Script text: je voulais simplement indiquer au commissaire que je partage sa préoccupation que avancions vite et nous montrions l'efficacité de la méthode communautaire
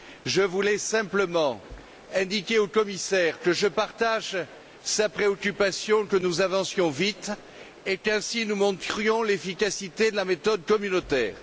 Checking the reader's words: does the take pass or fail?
fail